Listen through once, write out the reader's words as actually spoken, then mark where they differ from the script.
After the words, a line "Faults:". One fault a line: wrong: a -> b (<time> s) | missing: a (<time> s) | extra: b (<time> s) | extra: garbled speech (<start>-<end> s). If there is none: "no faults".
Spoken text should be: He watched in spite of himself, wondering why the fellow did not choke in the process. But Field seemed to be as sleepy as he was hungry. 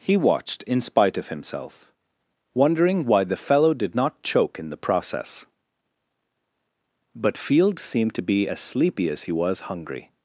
He watched in spite of himself, wondering why the fellow did not choke in the process. But Field seemed to be as sleepy as he was hungry.
Faults:
no faults